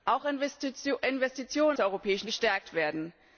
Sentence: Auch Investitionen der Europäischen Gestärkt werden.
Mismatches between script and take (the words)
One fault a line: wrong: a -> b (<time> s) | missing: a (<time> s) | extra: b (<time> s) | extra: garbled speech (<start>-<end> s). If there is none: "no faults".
no faults